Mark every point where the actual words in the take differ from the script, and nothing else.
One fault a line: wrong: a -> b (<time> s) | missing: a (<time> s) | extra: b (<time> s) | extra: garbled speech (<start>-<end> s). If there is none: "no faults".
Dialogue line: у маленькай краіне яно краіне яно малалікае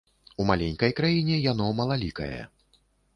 missing: краіне яно (1.7 s)